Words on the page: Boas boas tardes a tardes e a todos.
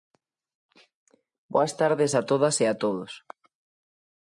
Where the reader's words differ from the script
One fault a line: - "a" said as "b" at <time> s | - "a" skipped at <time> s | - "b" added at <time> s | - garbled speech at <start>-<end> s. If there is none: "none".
- "boas" skipped at 1.7 s
- "tardes" said as "todas" at 2.3 s